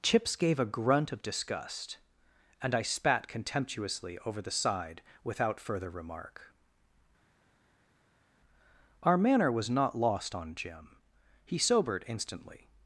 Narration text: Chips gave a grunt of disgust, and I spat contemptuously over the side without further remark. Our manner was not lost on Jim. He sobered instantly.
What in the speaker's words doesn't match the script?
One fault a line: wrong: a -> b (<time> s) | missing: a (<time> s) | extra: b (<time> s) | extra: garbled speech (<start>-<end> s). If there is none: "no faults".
no faults